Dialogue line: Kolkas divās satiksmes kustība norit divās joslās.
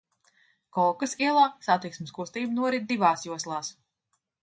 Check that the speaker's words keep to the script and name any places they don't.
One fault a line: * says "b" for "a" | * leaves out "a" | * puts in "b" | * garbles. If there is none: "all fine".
* says "ielā" for "divās"